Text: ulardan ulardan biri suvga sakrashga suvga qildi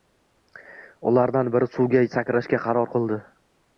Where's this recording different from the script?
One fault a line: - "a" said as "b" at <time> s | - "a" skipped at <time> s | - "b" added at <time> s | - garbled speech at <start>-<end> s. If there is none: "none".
- "ulardan" skipped at 1.5 s
- "suvga" said as "qaror" at 2.6 s